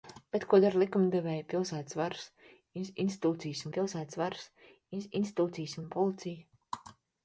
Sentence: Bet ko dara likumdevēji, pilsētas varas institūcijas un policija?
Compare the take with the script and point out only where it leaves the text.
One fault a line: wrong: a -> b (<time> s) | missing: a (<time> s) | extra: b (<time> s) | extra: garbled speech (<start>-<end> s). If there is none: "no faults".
extra: pilsētas varas institūcijas (3.8 s)